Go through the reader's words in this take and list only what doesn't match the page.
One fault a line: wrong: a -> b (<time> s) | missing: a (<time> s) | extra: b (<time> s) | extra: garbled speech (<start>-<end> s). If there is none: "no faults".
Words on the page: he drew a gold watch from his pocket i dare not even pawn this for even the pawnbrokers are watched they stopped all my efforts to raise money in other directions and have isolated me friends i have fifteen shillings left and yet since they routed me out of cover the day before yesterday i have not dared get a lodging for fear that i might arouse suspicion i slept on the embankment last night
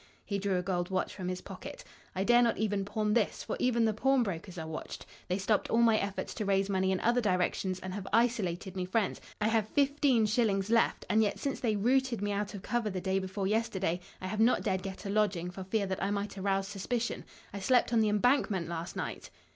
no faults